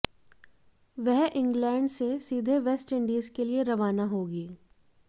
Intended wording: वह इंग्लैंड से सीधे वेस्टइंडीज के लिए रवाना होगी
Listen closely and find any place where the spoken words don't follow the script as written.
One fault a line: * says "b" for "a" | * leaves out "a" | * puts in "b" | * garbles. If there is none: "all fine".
all fine